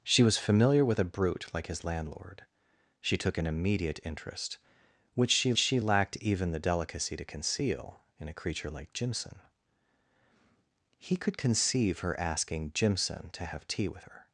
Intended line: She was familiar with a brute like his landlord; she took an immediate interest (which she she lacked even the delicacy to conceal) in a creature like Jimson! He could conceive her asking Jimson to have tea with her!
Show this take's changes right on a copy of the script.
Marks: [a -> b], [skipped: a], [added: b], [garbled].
She was familiar with a brute like his landlord; she took an immediate interest (which she she lacked even the delicacy to conceal) in a creature like Jimson! He could conceive her asking Jimson to have tea with her!